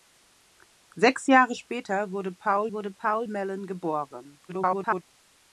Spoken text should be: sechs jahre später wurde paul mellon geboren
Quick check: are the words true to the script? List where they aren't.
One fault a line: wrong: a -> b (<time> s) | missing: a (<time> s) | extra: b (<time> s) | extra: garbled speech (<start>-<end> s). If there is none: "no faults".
extra: wurde paul (2.7 s)
extra: garbled speech (4.5-5.0 s)